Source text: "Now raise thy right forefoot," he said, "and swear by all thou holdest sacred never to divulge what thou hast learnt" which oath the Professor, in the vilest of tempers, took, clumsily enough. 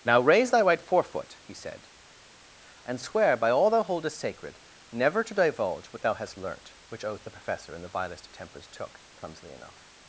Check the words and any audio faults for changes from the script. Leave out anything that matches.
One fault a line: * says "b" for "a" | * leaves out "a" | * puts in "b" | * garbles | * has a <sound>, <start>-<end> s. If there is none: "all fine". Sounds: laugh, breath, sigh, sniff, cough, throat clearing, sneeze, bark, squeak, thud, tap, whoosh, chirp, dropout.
all fine